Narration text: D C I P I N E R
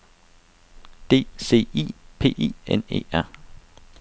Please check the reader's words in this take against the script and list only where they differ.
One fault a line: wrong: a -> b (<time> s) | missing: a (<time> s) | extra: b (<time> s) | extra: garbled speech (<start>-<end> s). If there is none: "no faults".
no faults